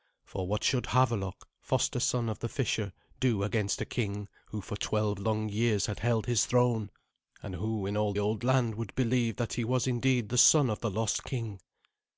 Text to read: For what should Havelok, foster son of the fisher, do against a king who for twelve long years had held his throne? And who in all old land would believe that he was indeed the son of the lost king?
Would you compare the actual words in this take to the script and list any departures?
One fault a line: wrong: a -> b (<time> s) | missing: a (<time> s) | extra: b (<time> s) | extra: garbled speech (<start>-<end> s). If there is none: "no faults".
no faults